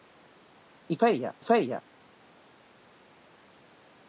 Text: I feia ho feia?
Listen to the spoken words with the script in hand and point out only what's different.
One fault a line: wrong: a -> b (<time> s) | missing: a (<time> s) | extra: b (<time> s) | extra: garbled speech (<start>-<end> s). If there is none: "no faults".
no faults